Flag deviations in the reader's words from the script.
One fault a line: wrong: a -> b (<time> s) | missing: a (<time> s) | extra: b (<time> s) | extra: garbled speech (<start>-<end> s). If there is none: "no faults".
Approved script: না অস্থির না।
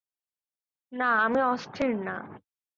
extra: আমি (1.2 s)